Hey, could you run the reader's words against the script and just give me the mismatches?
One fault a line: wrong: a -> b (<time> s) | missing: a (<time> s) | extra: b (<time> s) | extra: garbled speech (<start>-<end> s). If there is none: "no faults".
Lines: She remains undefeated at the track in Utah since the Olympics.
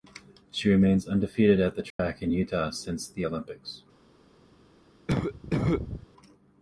no faults